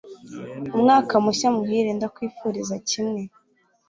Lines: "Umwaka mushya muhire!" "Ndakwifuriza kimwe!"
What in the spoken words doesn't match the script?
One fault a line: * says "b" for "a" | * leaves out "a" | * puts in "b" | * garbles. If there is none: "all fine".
all fine